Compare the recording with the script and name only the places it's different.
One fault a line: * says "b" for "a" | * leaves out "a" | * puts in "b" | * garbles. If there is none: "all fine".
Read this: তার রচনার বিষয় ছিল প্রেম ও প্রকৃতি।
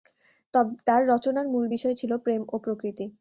* puts in "মূল"